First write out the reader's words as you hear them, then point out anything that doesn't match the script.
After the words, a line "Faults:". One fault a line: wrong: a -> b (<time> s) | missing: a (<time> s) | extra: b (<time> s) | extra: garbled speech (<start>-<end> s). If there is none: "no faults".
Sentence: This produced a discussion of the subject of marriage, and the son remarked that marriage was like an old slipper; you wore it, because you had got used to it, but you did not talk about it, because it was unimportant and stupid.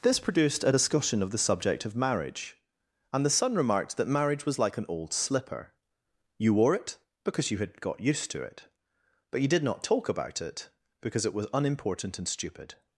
This produced a discussion of the subject of marriage, and the son remarked that marriage was like an old slipper; you wore it, because you had got used to it, but you did not talk about it, because it was unimportant and stupid.
Faults:
no faults